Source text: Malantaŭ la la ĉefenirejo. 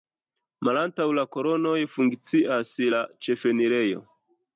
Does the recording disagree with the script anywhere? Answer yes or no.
yes